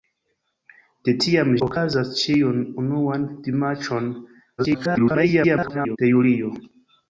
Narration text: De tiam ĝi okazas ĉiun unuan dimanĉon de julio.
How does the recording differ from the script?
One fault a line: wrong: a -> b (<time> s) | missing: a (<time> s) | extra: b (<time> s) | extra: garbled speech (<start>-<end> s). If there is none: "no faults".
missing: ĝi (1.5 s)
extra: garbled speech (4.6-6.0 s)